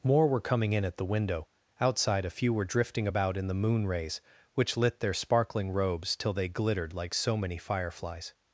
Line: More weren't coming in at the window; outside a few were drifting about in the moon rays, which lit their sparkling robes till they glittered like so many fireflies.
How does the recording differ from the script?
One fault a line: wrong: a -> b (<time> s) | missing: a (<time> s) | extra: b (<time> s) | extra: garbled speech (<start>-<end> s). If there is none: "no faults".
wrong: weren't -> were (0.3 s)